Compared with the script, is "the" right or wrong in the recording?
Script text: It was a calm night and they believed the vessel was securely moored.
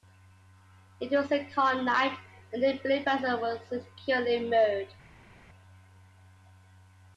wrong